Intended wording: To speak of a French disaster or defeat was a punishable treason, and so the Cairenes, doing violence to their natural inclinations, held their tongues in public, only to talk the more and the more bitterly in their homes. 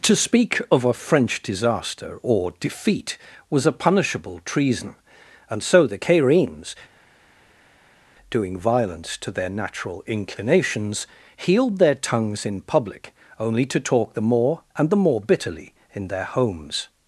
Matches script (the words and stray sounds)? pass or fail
fail